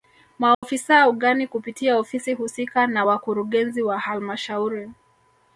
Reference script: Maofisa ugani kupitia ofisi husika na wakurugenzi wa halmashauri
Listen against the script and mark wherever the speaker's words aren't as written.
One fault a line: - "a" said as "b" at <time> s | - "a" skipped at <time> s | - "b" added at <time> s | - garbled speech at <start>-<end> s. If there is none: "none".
none